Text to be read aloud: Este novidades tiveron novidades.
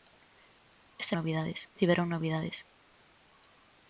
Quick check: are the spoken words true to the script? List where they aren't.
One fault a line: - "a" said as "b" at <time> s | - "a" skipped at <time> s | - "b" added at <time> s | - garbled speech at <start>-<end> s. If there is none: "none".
none